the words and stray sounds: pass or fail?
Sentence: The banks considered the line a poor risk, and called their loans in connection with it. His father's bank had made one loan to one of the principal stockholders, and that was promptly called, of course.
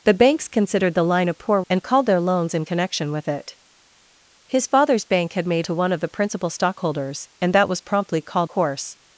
fail